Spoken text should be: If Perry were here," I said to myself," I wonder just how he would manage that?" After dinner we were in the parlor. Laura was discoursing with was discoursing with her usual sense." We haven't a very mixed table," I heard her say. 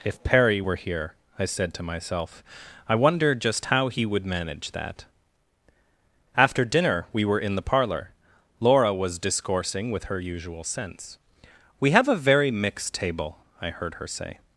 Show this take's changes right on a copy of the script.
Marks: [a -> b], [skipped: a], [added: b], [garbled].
If Perry were here," I said to myself," I wonder just how he would manage that?" After dinner we were in the parlor. Laura was discoursing with [skipped: was discoursing with] her usual sense." We [haven't -> have] a very mixed table," I heard her say.